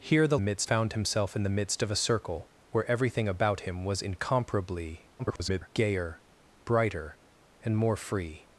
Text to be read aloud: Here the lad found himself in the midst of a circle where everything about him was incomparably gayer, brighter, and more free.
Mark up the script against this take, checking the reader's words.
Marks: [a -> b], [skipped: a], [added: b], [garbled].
Here the [lad -> midst] found himself in the midst of a circle where everything about him was incomparably [garbled] gayer, brighter, and more free.